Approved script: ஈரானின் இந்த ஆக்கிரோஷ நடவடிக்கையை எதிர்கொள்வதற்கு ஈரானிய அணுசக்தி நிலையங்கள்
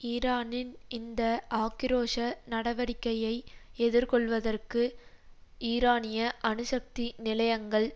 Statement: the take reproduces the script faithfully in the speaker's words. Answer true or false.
true